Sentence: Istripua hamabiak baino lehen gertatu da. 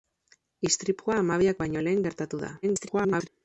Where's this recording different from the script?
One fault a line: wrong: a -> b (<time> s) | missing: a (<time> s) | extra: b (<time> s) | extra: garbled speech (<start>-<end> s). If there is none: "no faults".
extra: garbled speech (2.6-3.3 s)